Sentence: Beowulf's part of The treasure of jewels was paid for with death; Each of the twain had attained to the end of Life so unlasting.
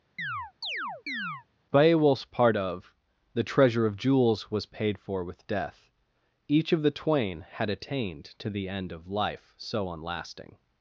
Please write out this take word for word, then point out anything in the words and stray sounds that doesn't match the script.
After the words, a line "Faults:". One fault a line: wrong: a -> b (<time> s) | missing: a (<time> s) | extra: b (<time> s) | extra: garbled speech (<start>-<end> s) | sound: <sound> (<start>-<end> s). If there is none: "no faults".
Beowulf's part of The treasure of jewels was paid for with death; Each of the twain had attained to the end of Life so unlasting.
Faults:
sound: chirp (0.2-1.4 s)